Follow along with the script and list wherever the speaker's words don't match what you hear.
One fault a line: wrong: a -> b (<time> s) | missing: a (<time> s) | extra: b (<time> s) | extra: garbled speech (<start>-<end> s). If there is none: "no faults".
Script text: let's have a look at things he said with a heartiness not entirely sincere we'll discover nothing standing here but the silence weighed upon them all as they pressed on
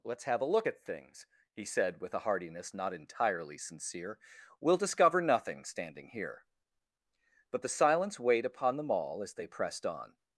no faults